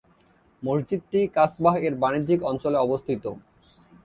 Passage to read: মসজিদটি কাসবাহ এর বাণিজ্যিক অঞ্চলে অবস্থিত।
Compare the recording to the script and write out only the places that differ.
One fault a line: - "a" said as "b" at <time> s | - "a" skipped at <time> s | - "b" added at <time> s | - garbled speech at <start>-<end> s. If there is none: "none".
none